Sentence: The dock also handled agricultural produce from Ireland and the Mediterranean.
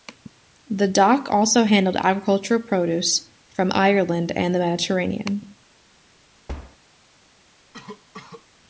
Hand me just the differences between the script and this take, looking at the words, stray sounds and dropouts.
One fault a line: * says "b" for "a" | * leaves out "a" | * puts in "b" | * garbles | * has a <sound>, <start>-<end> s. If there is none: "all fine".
* has a thud, 6.5-6.8 s
* has a cough, 7.7-8.5 s